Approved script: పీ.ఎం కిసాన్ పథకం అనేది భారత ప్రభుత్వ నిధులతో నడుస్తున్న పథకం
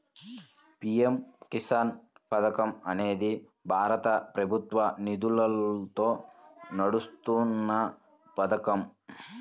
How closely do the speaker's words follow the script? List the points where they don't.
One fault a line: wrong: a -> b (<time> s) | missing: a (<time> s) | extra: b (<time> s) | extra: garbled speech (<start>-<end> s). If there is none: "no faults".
no faults